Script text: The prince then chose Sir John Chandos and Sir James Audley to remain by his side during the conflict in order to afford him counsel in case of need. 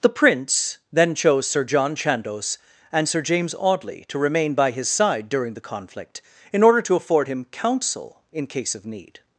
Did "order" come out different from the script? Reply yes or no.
no